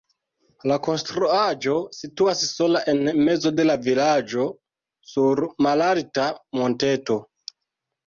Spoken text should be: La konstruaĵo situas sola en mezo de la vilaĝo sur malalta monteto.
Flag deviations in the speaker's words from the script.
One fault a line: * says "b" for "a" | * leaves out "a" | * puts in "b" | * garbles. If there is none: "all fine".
all fine